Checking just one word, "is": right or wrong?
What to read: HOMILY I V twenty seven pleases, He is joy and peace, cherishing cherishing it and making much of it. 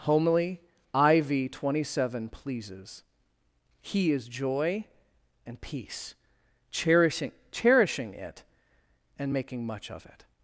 right